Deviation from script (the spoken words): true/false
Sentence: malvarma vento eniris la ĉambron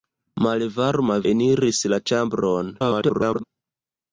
true